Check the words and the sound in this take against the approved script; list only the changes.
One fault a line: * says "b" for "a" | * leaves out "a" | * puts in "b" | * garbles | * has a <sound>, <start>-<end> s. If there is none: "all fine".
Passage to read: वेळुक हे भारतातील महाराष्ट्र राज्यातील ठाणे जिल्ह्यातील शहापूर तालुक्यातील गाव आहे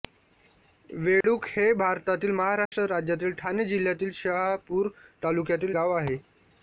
* has a dropout, 1.2-1.2 s
* has a dropout, 2.7-2.7 s